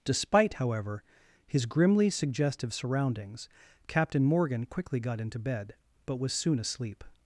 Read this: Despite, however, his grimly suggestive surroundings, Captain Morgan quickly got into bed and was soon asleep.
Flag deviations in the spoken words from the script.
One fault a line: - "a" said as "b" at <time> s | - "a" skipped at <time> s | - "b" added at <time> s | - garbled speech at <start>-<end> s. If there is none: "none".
- "and" said as "but" at 6.0 s